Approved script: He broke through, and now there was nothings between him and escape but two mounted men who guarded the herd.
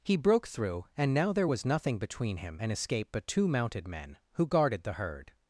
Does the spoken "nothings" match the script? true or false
false